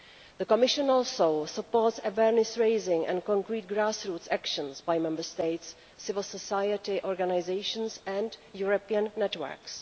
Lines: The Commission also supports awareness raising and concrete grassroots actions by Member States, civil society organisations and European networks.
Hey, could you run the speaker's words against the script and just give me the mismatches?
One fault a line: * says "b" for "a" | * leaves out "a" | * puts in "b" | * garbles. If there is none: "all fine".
all fine